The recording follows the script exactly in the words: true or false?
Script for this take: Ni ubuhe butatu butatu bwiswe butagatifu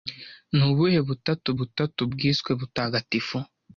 true